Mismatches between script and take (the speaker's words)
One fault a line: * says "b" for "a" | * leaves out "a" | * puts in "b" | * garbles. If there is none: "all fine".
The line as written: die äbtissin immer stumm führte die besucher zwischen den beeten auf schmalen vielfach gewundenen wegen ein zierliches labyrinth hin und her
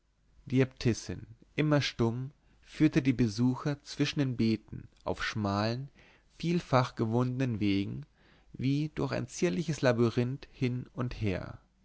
* puts in "wie durch"